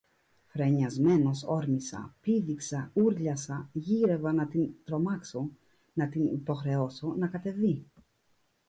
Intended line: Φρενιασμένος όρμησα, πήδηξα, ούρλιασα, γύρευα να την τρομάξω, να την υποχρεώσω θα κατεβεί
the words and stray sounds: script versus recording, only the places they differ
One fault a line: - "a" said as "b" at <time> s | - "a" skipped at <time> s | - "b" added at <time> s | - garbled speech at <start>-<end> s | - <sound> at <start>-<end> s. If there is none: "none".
- "θα" said as "να" at 7.1 s